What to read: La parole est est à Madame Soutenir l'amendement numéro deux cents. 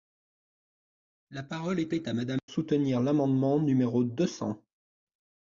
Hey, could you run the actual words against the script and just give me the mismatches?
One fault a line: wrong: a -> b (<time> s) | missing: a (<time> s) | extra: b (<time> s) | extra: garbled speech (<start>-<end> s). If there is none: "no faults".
no faults